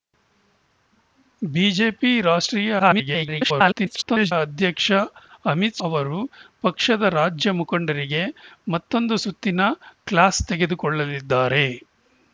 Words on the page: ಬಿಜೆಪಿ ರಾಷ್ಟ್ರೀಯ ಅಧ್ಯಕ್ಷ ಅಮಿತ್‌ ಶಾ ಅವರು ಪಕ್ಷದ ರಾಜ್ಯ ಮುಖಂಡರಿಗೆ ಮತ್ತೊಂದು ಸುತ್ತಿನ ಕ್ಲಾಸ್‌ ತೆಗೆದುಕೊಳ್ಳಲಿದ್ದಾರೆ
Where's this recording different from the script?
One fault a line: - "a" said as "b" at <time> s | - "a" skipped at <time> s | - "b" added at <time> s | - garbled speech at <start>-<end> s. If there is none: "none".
- garbled speech at 2.8-4.3 s
- "ಶಾ" skipped at 5.8 s